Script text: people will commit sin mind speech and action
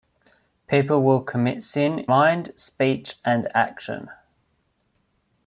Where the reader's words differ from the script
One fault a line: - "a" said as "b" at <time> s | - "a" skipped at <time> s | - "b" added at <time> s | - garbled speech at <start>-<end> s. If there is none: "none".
none